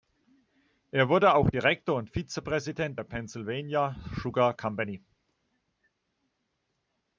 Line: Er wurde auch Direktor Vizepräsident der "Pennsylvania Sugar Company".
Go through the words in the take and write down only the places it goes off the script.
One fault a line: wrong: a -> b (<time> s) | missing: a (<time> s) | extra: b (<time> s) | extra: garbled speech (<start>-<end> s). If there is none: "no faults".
extra: und (2.0 s)